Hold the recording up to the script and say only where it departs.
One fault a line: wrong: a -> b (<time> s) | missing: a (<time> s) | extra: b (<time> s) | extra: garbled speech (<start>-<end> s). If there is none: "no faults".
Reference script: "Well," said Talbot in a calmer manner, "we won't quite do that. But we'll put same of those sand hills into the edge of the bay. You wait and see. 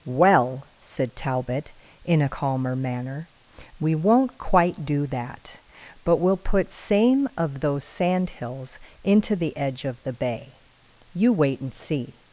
no faults